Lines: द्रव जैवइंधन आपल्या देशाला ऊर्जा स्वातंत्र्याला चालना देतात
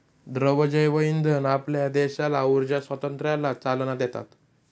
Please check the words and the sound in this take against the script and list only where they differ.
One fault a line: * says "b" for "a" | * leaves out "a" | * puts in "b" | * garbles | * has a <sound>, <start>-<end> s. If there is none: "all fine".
all fine